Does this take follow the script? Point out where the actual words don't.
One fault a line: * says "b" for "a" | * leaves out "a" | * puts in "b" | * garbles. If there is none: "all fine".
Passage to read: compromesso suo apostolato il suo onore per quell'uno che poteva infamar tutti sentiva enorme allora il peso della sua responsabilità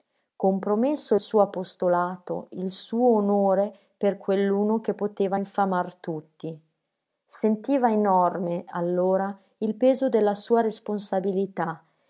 all fine